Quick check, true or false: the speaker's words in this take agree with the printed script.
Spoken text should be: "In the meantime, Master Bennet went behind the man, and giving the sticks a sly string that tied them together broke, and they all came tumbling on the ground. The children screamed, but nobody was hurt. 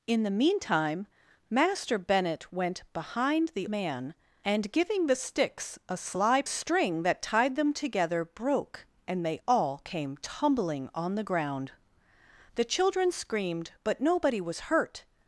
true